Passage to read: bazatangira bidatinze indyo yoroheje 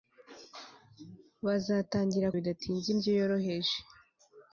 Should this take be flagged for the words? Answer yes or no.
no